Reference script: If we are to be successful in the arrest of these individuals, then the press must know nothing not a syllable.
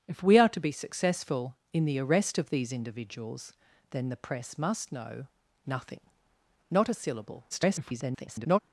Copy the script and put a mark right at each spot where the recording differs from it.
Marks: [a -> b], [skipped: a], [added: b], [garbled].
If we are to be successful in the arrest of these individuals, then the press must know nothing not a syllable. [garbled]